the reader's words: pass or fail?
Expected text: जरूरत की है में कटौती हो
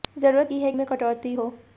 pass